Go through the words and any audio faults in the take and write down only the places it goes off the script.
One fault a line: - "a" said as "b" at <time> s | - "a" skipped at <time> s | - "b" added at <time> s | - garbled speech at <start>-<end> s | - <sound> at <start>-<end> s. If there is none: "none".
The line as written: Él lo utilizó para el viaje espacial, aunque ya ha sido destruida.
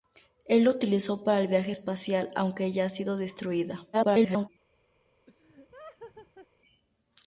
- garbled speech at 3.9-4.5 s
- laugh at 5.3-6.5 s